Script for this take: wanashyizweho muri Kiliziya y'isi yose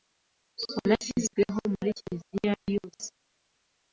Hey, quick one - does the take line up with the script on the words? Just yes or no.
no